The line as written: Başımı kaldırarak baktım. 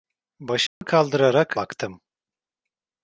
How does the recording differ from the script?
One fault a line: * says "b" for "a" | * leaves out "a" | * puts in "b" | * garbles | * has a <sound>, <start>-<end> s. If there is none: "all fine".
* has a dropout, 0.7-0.8 s